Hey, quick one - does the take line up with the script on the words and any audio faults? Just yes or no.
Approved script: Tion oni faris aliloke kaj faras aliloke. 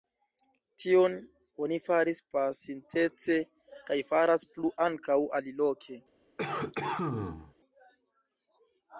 no